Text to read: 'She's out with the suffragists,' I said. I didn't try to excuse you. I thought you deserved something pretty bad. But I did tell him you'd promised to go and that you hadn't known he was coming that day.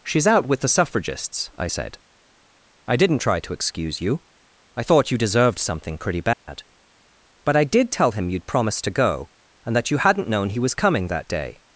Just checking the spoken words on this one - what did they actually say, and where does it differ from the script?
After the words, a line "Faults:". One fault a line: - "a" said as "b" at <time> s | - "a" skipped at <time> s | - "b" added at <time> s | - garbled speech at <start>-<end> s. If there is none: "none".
'She's out with the suffragists,' I said. I didn't try to excuse you. I thought you deserved something pretty bad. But I did tell him you'd promised to go and that you hadn't known he was coming that day.
Faults:
none